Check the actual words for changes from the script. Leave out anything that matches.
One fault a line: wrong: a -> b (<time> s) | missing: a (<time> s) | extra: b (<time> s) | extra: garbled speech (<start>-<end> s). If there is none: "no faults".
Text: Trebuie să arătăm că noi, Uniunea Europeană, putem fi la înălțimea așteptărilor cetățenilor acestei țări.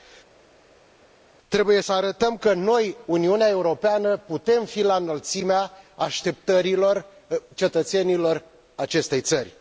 no faults